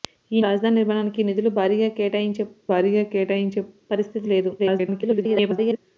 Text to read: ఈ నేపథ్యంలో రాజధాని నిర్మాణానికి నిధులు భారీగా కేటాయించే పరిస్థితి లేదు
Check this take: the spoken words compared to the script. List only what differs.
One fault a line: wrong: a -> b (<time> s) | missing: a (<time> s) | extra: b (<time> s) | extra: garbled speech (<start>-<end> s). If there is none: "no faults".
missing: నేపథ్యంలో (0.4 s)
extra: భారీగా కేటాయించే (2.7 s)
extra: garbled speech (4.6-5.8 s)